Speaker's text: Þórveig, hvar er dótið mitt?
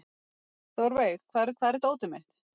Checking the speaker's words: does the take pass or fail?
fail